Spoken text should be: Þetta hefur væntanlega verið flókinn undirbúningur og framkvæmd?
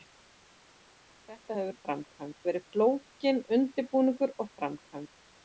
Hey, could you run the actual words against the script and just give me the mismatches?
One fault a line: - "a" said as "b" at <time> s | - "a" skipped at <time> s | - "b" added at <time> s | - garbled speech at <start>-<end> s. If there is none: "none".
- "væntanlega" said as "framkvæmd" at 1.8 s